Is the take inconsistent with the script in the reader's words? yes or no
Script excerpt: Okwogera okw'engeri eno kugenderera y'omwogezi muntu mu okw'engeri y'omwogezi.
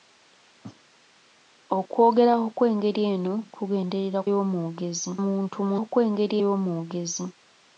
no